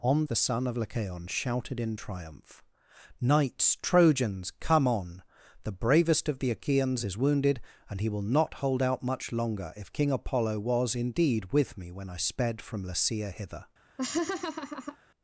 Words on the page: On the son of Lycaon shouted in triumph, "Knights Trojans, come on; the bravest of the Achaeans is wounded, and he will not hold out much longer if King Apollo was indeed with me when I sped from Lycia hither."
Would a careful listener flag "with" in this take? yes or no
no